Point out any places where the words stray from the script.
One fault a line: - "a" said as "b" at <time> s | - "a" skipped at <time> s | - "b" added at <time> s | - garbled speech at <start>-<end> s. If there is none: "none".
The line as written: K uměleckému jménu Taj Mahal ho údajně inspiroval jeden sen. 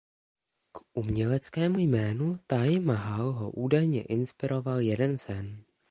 none